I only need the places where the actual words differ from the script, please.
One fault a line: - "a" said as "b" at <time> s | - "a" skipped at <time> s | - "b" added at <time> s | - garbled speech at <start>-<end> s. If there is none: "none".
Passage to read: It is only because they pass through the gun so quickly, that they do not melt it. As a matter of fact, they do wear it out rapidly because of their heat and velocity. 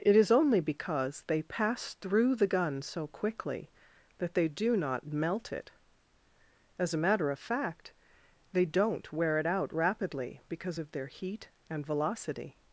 - "do" said as "don't" at 8.6 s